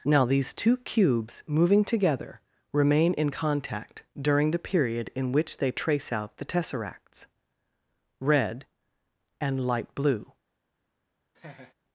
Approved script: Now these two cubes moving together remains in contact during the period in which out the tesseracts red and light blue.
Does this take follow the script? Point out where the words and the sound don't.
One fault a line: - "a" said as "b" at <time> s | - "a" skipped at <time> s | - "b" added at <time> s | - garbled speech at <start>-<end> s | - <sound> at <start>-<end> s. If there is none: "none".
- "remains" said as "remain" at 2.7 s
- "they trace" added at 5.6 s
- laugh at 11.3-11.7 s